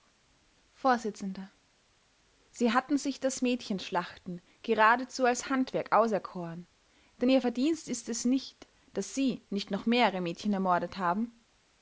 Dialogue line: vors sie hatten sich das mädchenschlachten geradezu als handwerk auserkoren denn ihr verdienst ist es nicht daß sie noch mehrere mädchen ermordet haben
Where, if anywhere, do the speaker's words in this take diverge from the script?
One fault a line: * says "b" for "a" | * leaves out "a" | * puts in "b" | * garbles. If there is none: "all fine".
* puts in "nicht"